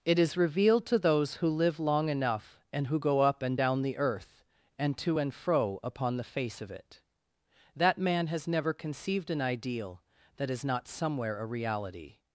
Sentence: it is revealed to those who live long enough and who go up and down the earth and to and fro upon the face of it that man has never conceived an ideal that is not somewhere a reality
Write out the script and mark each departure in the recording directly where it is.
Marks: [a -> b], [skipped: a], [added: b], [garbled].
it is revealed to those who live long enough and who go up and down the earth and to and fro upon the face of it that man has never conceived an ideal that is not somewhere a reality